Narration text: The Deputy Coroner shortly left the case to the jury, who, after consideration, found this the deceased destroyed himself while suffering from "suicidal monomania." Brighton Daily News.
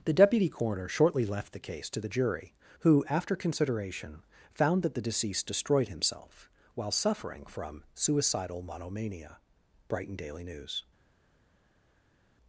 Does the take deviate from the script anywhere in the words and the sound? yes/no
yes